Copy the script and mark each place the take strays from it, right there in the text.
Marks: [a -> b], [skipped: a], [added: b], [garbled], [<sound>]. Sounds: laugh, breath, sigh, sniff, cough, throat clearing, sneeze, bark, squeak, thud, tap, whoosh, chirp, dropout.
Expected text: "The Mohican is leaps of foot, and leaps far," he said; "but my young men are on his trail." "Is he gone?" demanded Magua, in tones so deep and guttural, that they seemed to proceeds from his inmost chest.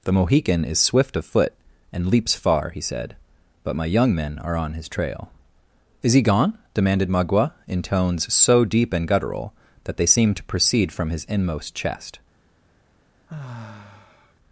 "The Mohican is [leaps -> swift] of foot, and leaps far," he said; "but my young men are on his trail." "Is he gone?" demanded Magua, in tones so deep and guttural, that they seemed to [proceeds -> proceed] from his inmost chest. [sigh]